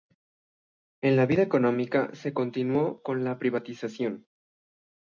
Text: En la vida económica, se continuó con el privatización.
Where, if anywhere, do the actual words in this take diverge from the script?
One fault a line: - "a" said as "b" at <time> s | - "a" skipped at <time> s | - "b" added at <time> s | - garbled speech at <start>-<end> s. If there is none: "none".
- "el" said as "la" at 3.2 s